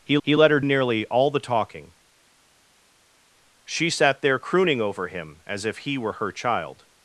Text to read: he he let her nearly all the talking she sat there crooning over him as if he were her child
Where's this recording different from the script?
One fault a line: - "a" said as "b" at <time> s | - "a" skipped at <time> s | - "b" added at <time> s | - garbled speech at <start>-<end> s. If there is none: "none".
none